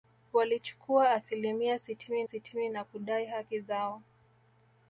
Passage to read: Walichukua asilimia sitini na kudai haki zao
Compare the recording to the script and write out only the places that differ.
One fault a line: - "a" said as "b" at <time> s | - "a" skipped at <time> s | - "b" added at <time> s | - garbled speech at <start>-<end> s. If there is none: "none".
- "sitini" added at 2.2 s